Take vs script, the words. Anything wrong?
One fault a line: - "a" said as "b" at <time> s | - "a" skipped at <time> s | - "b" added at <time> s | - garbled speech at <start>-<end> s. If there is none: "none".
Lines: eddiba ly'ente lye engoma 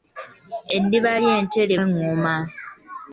none